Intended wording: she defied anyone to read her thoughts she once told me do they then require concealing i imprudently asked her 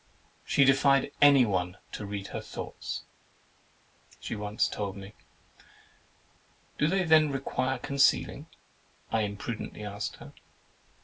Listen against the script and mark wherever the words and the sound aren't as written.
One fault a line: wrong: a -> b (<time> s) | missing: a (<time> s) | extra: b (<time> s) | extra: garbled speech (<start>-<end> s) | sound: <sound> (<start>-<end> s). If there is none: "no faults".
no faults